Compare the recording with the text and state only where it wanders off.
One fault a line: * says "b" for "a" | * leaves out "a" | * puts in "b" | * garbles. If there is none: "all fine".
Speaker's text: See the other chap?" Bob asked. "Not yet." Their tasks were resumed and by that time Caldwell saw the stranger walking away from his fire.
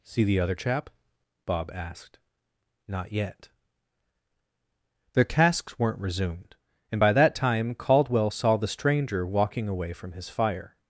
* says "weren't" for "were"